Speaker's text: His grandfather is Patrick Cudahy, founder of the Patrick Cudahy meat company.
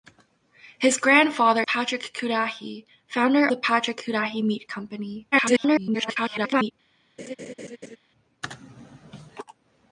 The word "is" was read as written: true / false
false